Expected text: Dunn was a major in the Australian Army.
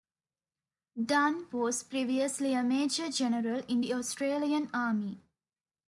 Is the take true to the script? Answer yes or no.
no